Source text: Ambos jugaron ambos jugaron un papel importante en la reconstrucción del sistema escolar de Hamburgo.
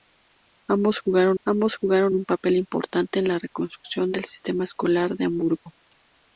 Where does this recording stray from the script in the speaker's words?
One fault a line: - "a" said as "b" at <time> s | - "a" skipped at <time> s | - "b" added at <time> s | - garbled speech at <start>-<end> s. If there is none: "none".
none